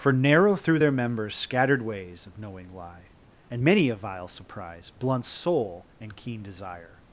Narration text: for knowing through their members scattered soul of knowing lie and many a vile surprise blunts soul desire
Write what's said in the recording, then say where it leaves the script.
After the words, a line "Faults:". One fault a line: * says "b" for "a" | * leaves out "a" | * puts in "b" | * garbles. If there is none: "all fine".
for narrow through their members scattered ways of knowing lie and many a vile surprise blunts soul and keen desire
Faults:
* says "narrow" for "knowing"
* says "ways" for "soul"
* puts in "and keen"